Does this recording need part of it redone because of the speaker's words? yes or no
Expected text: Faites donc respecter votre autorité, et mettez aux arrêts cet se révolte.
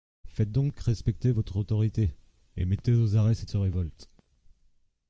no